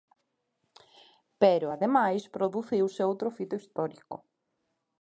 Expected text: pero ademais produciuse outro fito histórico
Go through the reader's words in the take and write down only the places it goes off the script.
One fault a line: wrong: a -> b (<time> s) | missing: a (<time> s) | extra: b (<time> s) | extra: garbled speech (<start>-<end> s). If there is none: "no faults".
no faults